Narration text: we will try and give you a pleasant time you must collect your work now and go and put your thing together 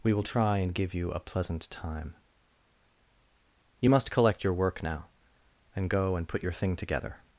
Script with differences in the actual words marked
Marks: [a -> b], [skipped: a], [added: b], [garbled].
we will try and give you a pleasant time you must collect your work now and go and put your thing together